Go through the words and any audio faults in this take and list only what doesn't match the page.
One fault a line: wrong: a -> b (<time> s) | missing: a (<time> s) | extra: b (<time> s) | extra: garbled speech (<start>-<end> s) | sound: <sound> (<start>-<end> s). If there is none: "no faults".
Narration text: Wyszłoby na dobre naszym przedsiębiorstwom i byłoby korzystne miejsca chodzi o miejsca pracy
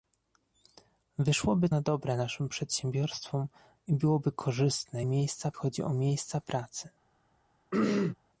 sound: throat clearing (7.7-8.2 s)